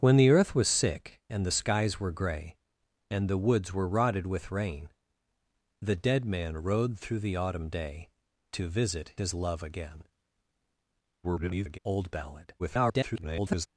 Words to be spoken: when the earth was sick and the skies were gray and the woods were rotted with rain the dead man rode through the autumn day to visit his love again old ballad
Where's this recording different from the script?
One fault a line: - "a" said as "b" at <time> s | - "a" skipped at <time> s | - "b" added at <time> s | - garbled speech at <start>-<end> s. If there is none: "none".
- garbled speech at 11.2-11.8 s
- garbled speech at 12.6-13.7 s